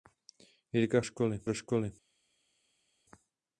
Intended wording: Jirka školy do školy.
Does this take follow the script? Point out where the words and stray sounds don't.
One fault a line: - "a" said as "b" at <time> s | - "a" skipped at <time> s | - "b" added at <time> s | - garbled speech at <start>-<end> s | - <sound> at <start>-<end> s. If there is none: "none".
none